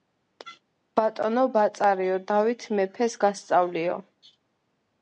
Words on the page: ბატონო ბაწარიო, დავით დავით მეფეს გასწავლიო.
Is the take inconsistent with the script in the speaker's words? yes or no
yes